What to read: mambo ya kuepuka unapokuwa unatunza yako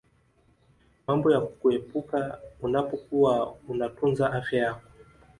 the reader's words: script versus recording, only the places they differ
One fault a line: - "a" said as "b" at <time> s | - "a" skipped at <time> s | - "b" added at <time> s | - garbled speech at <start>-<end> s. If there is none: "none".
- "afya" added at 4.3 s